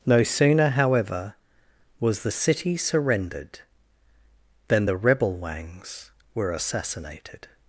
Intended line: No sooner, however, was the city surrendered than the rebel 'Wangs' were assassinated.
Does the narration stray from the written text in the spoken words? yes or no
no